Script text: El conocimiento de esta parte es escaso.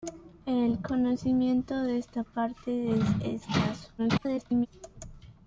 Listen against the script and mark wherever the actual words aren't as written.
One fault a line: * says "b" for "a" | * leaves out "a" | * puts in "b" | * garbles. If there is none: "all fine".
* garbles